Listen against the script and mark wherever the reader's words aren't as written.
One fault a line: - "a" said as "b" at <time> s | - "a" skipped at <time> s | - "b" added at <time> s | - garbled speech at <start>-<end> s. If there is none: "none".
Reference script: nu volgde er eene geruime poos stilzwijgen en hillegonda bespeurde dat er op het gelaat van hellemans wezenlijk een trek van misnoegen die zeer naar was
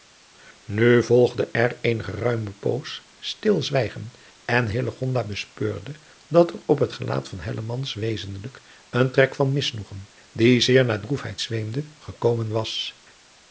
- "droefheid zweemde gekomen" added at 11.0 s